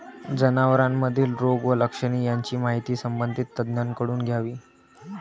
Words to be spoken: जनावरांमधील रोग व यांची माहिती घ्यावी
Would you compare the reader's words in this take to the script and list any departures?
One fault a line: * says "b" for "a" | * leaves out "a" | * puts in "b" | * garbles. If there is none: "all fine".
* puts in "लक्षणे"
* puts in "संबंधित तज्ज्ञांकडून"